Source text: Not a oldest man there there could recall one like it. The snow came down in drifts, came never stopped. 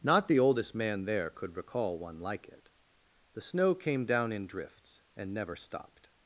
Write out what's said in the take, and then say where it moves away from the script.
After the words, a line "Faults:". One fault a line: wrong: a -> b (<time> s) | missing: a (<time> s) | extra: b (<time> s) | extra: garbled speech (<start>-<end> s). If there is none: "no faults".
Not the oldest man there could recall one like it. The snow came down in drifts, and never stopped.
Faults:
wrong: a -> the (0.3 s)
missing: there (1.3 s)
wrong: came -> and (5.2 s)